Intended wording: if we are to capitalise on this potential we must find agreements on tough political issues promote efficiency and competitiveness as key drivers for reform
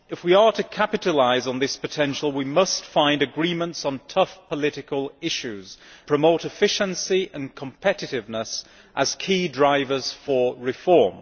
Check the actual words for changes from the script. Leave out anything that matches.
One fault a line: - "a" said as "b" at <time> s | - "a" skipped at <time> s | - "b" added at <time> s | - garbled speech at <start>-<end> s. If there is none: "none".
none